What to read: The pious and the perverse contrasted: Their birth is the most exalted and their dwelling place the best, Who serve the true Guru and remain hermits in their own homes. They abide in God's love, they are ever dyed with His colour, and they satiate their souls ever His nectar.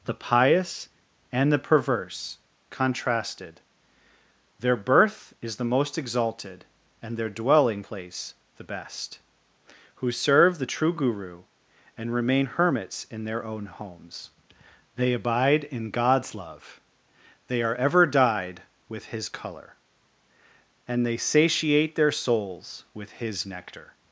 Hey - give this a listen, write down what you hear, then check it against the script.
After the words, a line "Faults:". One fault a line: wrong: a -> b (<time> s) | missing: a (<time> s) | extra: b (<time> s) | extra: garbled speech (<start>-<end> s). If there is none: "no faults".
The pious and the perverse contrasted: Their birth is the most exalted and their dwelling place the best, Who serve the true Guru and remain hermits in their own homes. They abide in God's love, they are ever dyed with His colour, and they satiate their souls with His nectar.
Faults:
wrong: ever -> with (22.9 s)